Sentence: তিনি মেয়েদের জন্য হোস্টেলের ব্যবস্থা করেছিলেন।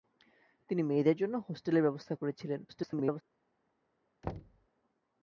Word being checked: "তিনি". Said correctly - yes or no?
yes